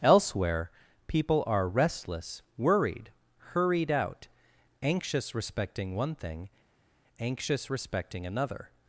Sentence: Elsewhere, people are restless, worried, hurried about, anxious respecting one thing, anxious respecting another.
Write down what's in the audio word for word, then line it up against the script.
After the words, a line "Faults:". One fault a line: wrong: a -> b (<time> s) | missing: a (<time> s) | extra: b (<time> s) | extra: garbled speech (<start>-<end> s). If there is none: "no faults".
Elsewhere, people are restless, worried, hurried out, anxious respecting one thing, anxious respecting another.
Faults:
wrong: about -> out (3.9 s)